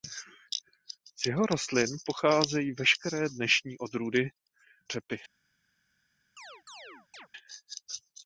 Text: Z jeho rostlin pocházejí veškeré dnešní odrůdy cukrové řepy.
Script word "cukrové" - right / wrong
wrong